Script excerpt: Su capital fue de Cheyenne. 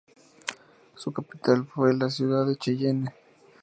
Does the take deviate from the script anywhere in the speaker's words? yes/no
yes